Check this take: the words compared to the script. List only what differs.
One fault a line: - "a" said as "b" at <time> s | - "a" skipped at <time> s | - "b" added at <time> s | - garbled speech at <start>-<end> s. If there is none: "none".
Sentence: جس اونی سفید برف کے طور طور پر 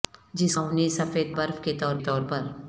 none